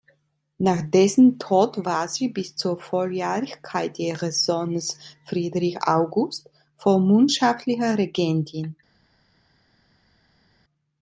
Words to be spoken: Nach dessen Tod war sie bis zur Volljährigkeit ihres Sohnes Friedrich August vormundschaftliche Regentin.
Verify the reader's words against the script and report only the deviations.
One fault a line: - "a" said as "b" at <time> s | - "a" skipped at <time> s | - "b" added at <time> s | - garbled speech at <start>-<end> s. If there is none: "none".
none